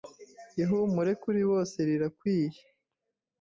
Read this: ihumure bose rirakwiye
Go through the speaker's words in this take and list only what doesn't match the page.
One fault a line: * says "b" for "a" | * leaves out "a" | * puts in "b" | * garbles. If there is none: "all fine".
* puts in "kuri"